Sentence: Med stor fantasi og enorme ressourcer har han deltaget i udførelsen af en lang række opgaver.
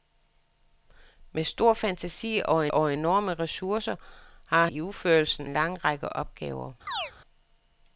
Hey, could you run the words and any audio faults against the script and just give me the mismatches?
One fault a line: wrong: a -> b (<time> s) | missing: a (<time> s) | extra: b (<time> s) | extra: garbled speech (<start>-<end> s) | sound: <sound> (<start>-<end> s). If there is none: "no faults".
extra: og (2.7 s)
missing: han deltaget (4.7 s)
missing: af (5.5 s)
sound: chirp (6.9-7.1 s)